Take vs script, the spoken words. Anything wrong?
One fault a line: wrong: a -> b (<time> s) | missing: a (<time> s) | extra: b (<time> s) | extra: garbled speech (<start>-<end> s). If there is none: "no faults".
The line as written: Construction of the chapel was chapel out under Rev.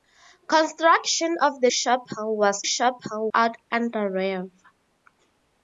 no faults